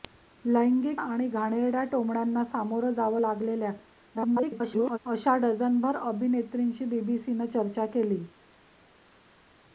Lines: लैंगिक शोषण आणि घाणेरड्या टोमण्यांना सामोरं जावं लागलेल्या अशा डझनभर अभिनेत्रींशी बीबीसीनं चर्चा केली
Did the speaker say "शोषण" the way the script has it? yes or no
no